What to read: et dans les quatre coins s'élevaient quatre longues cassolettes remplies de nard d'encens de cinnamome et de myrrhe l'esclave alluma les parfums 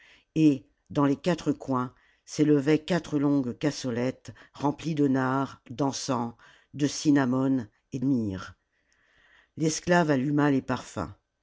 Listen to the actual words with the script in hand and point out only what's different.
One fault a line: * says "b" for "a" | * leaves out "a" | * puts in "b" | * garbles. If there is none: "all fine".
* leaves out "de"